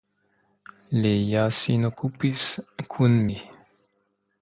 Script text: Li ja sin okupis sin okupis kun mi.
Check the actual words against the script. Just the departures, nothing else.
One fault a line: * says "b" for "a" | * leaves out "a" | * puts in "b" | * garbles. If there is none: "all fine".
* leaves out "sin okupis"